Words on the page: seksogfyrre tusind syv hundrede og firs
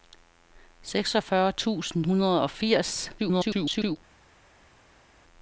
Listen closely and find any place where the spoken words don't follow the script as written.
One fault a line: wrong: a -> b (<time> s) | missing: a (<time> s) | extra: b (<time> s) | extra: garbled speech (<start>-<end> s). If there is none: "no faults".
missing: syv (2.1 s)
extra: garbled speech (3.2-4.0 s)